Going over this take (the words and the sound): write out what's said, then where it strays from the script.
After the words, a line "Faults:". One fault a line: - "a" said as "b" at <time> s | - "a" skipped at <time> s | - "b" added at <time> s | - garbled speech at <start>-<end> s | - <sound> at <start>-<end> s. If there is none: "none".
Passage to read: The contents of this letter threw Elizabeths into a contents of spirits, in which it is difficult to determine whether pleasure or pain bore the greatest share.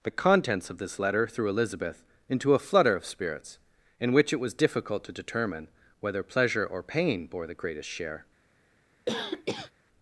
The contents of this letter threw Elizabeth into a flutter of spirits, in which it was difficult to determine whether pleasure or pain bore the greatest share.
Faults:
- "Elizabeths" said as "Elizabeth" at 1.5 s
- "contents" said as "flutter" at 2.6 s
- "is" said as "was" at 4.4 s
- cough at 9.1-9.7 s